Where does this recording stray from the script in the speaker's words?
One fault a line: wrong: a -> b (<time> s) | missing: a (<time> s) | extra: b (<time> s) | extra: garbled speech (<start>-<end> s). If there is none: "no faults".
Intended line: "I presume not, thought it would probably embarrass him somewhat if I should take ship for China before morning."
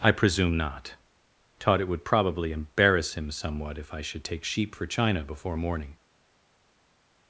wrong: thought -> taught (1.6 s)
wrong: ship -> sheep (4.4 s)